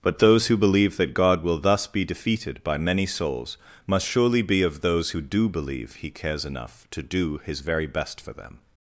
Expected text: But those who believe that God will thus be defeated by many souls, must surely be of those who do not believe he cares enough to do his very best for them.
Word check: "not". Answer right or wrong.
wrong